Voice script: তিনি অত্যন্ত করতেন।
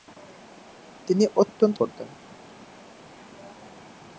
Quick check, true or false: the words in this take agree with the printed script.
true